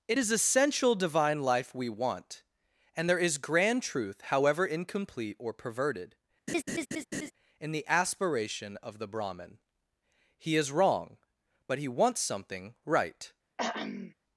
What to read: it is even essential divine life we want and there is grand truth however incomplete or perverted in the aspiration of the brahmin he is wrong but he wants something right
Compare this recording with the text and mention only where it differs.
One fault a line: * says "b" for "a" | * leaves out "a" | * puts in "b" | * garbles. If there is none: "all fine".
* leaves out "even"